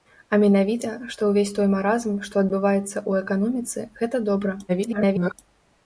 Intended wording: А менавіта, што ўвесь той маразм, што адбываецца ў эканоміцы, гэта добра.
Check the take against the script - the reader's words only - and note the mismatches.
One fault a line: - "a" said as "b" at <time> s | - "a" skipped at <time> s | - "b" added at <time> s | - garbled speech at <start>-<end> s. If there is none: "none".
- garbled speech at 4.7-5.3 s